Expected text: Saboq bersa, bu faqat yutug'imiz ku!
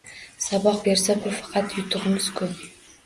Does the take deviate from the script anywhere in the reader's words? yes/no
no